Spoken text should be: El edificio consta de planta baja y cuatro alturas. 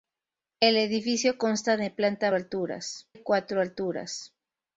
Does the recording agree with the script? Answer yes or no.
no